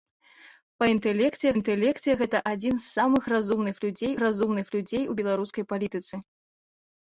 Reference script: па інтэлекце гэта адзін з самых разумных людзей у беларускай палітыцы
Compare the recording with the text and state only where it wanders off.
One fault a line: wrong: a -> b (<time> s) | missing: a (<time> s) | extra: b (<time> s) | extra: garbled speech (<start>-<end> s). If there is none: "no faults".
extra: інтэлекце (1.6 s)
extra: разумных людзей (4.2 s)